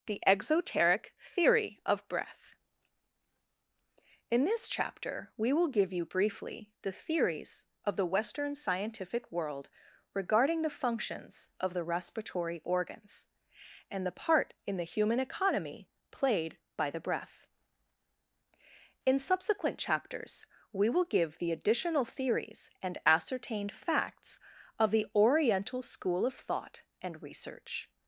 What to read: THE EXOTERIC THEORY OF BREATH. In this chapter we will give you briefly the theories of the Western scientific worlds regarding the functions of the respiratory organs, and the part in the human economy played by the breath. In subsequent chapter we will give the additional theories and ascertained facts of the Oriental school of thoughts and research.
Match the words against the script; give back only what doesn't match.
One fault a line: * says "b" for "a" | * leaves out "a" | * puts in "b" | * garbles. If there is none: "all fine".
* says "world" for "worlds"
* says "chapters" for "chapter"
* says "thought" for "thoughts"